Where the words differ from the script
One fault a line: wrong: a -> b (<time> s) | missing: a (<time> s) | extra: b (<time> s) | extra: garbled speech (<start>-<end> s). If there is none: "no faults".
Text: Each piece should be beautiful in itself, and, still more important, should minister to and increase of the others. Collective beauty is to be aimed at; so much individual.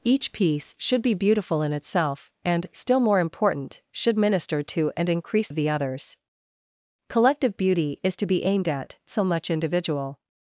no faults